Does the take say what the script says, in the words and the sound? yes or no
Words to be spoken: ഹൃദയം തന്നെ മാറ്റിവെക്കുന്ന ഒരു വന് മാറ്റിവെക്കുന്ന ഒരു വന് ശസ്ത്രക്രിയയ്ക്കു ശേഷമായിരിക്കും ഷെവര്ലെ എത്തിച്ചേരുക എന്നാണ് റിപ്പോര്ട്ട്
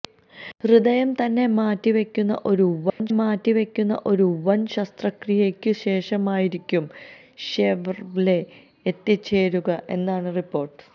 no